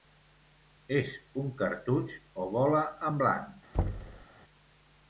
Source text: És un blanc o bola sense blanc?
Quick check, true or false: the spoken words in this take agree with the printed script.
false